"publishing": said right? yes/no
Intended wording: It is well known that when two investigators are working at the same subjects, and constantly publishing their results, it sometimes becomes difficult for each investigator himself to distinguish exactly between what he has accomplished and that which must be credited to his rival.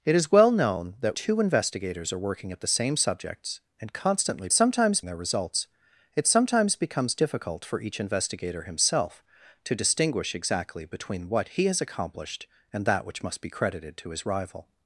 no